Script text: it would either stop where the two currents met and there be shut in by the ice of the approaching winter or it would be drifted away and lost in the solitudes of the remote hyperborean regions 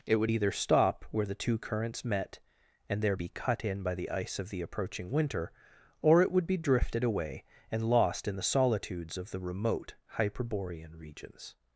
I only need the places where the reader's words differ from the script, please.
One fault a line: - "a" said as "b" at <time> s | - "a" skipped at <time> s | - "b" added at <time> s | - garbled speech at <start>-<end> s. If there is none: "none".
- "shut" said as "cut" at 3.3 s